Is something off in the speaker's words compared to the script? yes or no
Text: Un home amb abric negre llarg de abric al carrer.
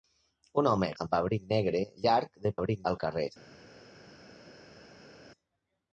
no